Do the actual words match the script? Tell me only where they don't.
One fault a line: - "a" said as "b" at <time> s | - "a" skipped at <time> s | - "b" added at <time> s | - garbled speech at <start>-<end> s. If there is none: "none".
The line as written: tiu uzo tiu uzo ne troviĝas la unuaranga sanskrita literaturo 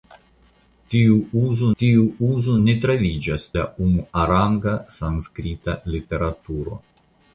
none